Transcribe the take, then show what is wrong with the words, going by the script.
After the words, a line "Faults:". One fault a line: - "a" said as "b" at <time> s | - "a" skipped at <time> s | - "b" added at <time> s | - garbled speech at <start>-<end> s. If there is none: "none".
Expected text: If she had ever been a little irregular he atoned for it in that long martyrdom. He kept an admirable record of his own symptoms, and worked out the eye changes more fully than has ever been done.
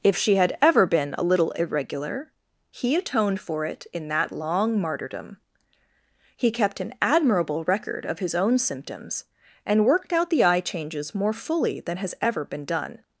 If she had ever been a little irregular he atoned for it in that long martyrdom. He kept an admirable record of his own symptoms, and worked out the eye changes more fully than has ever been done.
Faults:
none